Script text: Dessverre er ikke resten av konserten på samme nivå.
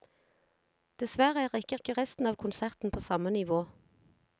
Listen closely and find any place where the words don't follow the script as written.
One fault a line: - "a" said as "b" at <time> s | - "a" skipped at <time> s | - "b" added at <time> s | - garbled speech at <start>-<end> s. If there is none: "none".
- "ikke" added at 1.7 s